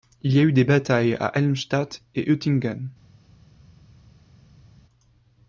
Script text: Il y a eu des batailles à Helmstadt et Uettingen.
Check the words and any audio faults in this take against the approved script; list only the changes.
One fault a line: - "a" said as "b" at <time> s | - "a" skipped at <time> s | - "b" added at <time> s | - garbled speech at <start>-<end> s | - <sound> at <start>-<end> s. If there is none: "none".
none